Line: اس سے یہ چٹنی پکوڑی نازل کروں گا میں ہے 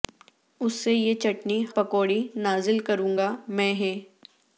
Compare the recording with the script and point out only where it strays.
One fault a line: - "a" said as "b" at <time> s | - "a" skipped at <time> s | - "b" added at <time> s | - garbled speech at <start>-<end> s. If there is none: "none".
none